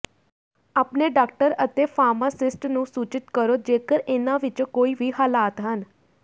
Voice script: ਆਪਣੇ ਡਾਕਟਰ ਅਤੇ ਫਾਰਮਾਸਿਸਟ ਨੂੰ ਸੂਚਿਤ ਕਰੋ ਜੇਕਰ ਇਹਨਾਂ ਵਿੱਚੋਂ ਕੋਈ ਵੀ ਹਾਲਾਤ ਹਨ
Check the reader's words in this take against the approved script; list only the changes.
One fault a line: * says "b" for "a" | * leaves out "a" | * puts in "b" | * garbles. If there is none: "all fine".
all fine